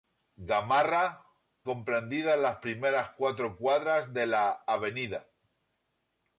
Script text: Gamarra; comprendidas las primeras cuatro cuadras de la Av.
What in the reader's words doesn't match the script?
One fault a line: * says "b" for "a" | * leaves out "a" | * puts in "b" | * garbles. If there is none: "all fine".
all fine